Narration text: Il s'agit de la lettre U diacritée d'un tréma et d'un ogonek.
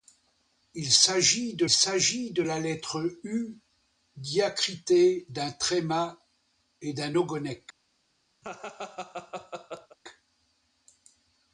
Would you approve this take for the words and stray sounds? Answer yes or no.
no